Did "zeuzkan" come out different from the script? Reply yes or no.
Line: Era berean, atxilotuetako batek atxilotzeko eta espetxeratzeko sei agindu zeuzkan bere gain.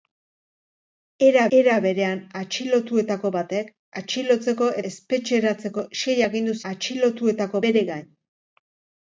yes